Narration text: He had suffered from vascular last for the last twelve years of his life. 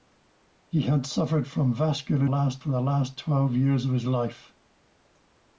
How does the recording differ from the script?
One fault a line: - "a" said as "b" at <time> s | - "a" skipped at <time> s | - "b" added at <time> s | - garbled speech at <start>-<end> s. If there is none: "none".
none